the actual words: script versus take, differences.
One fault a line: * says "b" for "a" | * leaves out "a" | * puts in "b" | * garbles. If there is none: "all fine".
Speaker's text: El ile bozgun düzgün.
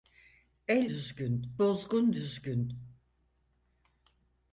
* says "düzgün" for "ile"